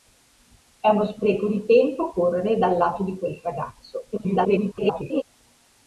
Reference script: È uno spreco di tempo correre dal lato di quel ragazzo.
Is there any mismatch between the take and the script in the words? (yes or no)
yes